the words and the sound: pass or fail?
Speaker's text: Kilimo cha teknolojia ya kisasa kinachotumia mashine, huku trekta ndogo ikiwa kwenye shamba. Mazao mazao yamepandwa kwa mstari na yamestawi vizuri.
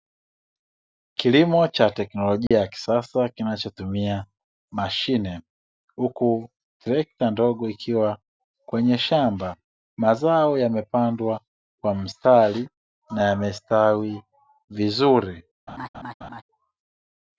fail